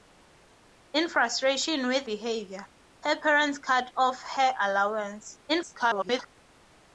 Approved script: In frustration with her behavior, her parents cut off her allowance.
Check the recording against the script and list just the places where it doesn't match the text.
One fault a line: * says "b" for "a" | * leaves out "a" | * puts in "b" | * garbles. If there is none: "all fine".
* leaves out "her"
* garbles